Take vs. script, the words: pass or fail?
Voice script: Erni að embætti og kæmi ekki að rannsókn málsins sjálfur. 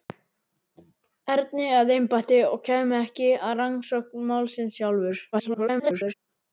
fail